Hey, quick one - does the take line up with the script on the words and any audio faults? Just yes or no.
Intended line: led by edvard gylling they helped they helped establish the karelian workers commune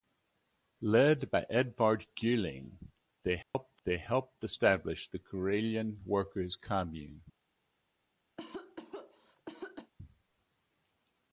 no